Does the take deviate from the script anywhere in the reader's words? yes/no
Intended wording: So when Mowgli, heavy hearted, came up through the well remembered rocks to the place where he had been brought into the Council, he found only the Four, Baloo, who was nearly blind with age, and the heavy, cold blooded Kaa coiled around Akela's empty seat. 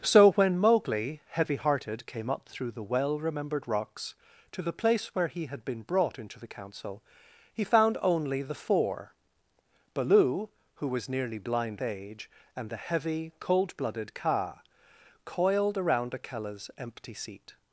yes